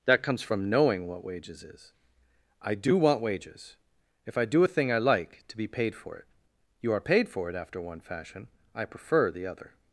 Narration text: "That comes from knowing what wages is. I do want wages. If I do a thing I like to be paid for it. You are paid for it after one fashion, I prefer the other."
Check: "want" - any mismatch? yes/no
no